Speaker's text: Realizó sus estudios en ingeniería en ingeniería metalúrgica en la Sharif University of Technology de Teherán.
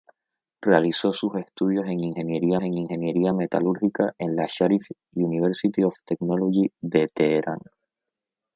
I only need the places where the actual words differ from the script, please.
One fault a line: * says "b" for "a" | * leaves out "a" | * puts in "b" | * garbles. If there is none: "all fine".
all fine